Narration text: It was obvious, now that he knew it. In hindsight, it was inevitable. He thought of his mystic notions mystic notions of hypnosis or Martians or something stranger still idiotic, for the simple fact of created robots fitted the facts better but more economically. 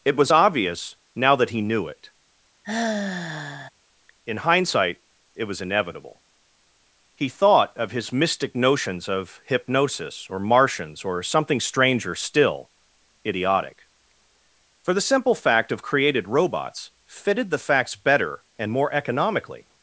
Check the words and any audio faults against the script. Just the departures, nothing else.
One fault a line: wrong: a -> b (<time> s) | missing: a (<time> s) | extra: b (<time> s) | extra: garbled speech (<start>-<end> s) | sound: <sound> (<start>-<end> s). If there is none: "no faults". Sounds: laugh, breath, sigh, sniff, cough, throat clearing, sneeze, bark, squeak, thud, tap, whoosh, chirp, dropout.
sound: sigh (2.6-3.7 s)
missing: mystic notions (9.1 s)
wrong: but -> and (18.6 s)